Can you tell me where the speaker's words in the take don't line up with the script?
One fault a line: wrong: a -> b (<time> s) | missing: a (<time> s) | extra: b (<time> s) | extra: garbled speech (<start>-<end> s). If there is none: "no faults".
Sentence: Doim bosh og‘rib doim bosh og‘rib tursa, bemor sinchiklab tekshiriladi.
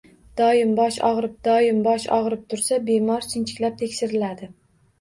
no faults